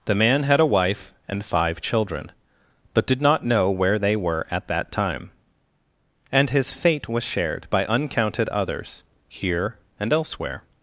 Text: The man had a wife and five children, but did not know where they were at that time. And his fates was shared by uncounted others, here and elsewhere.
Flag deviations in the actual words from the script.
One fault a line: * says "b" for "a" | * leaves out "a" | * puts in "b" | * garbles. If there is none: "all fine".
* says "fate" for "fates"